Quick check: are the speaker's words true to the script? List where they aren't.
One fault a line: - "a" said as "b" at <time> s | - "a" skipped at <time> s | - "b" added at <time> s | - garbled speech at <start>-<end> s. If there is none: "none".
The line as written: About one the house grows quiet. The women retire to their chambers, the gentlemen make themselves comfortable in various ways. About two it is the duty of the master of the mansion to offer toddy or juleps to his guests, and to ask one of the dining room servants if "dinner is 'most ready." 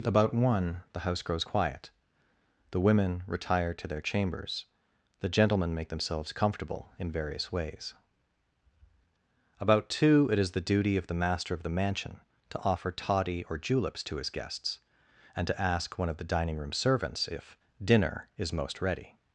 none